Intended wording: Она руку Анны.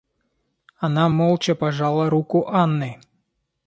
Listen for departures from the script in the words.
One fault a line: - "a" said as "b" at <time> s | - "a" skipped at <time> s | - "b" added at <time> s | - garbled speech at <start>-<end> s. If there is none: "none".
- "молча пожала" added at 1.1 s